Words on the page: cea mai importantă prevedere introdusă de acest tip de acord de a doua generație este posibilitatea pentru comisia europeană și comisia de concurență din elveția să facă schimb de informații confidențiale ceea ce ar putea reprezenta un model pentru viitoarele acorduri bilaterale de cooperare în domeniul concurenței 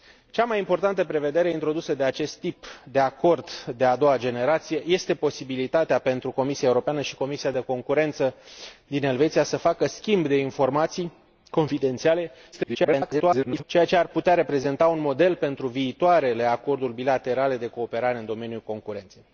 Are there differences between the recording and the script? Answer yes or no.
yes